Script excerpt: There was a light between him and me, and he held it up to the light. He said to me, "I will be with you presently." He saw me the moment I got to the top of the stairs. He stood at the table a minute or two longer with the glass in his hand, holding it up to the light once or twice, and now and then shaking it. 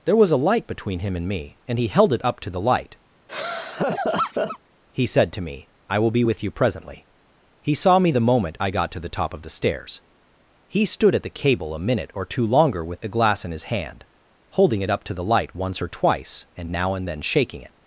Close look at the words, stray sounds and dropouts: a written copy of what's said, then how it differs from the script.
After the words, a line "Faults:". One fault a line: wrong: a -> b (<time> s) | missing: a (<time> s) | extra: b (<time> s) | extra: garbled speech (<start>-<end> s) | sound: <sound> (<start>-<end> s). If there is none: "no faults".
There was a light between him and me, and he held it up to the light. He said to me, "I will be with you presently." He saw me the moment I got to the top of the stairs. He stood at the cable a minute or two longer with the glass in his hand, holding it up to the light once or twice, and now and then shaking it.
Faults:
sound: laugh (3.3-4.6 s)
wrong: table -> cable (11.4 s)